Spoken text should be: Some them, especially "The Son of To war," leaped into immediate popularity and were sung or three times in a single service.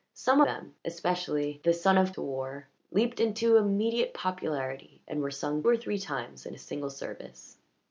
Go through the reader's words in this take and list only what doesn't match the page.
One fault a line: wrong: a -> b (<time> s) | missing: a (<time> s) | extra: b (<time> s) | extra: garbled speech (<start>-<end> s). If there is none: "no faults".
no faults